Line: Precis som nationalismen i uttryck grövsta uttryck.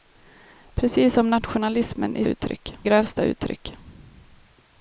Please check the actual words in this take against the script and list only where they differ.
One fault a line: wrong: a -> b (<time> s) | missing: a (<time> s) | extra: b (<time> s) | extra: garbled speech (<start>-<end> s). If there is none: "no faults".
no faults